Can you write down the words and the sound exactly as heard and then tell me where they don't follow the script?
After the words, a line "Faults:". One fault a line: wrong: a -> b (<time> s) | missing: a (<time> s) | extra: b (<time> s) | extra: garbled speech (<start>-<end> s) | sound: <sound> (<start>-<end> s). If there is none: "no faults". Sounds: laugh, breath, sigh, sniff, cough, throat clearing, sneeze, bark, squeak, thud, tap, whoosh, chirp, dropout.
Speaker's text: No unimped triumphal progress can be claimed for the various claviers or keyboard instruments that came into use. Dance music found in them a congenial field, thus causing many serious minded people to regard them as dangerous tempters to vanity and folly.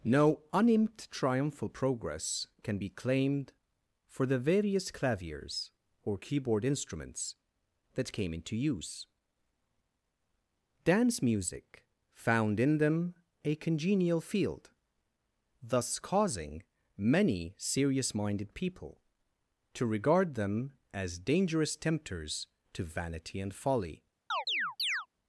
No unimped triumphal progress can be claimed for the various claviers or keyboard instruments that came into use. Dance music found in them a congenial field, thus causing many serious minded people to regard them as dangerous tempters to vanity and folly.
Faults:
sound: chirp (24.3-25.1 s)